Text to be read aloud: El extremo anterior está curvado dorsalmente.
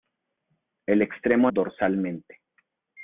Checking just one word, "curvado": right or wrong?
wrong